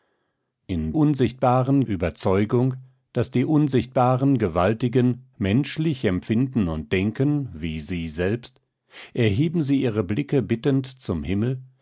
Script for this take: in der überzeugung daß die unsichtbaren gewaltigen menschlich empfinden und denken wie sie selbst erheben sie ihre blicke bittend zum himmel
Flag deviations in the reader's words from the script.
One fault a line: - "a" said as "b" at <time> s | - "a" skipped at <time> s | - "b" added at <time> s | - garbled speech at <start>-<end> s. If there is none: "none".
- "der" said as "unsichtbaren" at 0.9 s